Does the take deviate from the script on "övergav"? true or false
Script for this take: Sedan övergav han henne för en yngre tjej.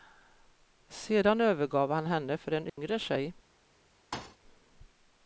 false